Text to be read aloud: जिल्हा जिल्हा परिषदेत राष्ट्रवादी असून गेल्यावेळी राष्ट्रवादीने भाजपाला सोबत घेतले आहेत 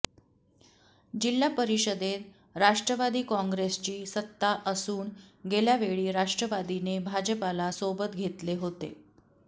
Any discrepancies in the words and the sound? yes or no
yes